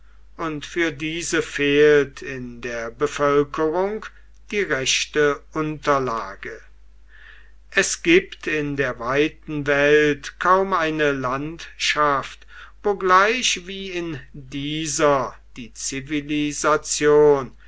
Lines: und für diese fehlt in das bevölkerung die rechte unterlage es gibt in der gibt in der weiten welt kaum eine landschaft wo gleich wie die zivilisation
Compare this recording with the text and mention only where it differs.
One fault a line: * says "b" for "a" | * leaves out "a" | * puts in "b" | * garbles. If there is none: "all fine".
* says "der" for "das"
* leaves out "gibt in der"
* puts in "in dieser"